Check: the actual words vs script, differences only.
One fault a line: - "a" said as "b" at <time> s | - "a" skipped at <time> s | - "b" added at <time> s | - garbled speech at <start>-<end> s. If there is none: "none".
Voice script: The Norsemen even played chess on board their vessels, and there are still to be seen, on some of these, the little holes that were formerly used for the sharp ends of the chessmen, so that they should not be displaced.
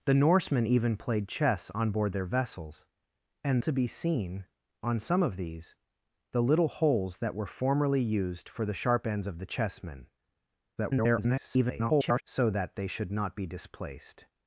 - "there are still" skipped at 3.6 s
- garbled speech at 10.8-12.2 s